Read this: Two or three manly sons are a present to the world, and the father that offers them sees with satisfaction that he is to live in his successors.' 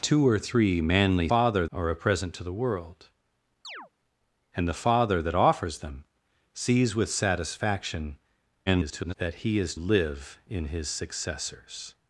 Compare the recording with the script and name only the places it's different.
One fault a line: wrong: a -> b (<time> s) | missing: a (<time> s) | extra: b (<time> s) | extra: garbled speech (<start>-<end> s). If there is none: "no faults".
wrong: sons -> father (1.3 s)
extra: garbled speech (8.7-9.1 s)
missing: to (9.7 s)